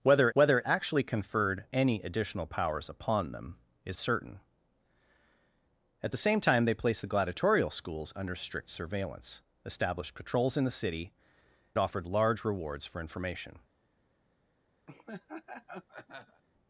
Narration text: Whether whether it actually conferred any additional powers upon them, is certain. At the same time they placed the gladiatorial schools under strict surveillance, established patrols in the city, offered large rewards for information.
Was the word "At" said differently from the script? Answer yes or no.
no